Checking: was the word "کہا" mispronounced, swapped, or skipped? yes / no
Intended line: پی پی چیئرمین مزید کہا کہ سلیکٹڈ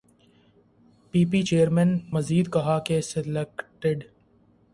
no